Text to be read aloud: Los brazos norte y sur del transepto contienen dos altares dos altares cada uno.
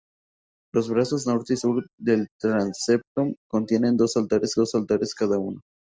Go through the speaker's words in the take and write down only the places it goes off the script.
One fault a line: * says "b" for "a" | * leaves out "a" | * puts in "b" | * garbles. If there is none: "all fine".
all fine